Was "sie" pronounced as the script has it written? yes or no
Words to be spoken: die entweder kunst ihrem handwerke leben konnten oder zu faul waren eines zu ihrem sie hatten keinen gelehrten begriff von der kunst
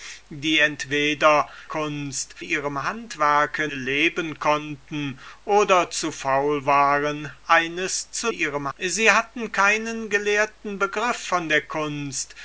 yes